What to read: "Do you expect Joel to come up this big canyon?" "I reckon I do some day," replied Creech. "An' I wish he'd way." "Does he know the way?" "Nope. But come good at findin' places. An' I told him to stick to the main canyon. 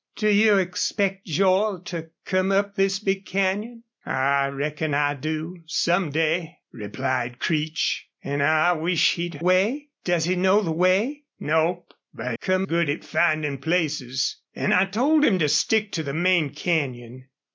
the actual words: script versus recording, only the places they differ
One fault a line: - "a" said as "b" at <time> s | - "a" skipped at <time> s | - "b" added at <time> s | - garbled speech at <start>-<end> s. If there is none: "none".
none